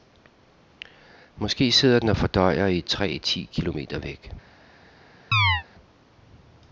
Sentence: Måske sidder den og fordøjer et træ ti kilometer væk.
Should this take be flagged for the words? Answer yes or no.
yes